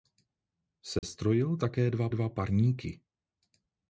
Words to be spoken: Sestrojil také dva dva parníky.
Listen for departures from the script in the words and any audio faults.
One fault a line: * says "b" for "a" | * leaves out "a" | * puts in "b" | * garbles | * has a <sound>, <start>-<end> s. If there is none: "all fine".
* has a dropout, 1.0-1.0 s